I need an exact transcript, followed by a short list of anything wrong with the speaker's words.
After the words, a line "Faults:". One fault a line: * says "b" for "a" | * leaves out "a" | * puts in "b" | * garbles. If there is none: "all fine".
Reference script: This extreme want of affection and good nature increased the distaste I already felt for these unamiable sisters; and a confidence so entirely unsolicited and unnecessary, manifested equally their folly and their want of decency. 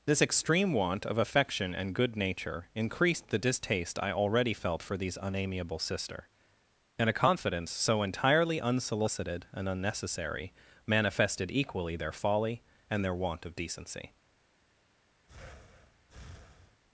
This extreme want of affection and good nature increased the distaste I already felt for these unamiable sister; and a confidence so entirely unsolicited and unnecessary, manifested equally their folly and their want of decency.
Faults:
* says "sister" for "sisters"